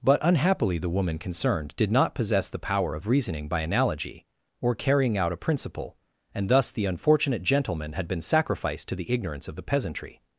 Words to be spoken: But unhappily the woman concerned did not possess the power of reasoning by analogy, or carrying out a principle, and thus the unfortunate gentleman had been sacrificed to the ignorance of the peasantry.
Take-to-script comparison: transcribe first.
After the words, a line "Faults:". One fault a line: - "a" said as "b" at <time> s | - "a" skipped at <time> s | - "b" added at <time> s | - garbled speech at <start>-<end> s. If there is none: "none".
But unhappily the woman concerned did not possess the power of reasoning by analogy, or carrying out a principle, and thus the unfortunate gentleman had been sacrificed to the ignorance of the peasantry.
Faults:
none